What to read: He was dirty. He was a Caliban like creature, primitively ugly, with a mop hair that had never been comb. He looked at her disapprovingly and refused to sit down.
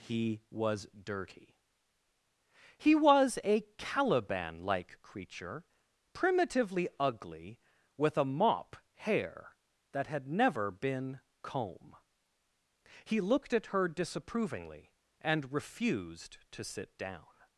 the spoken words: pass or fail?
pass